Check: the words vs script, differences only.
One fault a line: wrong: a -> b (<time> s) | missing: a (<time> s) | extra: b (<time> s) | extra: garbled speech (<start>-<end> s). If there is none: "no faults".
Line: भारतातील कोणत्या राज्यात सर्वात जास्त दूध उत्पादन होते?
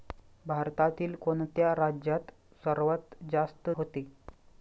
missing: दूध उत्पादन (3.7 s)